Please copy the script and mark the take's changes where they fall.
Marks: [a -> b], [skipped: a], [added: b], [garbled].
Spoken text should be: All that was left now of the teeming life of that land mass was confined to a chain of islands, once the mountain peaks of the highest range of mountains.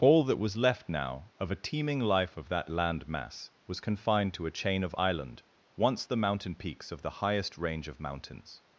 All that was left now of [the -> a] teeming life of that land mass was confined to a chain of [islands, -> island] once the mountain peaks of the highest range of mountains.